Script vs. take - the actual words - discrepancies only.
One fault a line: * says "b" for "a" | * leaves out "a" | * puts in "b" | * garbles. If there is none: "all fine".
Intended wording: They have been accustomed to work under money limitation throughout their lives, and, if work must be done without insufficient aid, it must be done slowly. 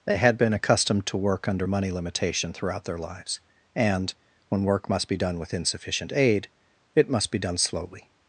* says "had" for "have"
* says "when" for "if"
* says "with" for "without"